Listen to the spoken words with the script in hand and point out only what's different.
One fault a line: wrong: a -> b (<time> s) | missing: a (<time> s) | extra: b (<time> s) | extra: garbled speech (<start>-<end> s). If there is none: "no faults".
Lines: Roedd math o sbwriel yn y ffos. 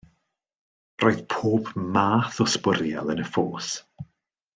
extra: pob (1.3 s)